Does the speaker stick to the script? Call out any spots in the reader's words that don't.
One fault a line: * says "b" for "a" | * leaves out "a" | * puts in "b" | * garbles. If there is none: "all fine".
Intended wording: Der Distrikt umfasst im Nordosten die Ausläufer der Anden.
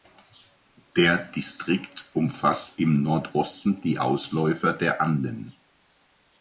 all fine